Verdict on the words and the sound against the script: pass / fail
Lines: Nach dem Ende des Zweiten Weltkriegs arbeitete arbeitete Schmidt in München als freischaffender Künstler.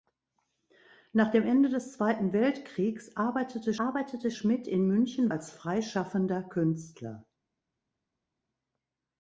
pass